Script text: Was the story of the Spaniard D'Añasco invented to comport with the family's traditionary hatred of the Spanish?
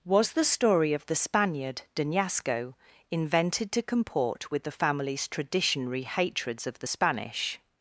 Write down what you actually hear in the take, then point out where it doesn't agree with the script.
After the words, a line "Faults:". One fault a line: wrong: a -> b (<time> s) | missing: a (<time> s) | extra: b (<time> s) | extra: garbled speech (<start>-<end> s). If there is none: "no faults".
Was the story of the Spaniard D'Añasco invented to comport with the family's traditionary hatreds of the Spanish?
Faults:
wrong: hatred -> hatreds (6.0 s)